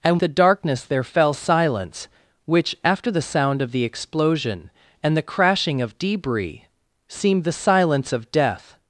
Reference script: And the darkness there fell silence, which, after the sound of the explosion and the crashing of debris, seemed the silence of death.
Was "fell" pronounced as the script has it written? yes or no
yes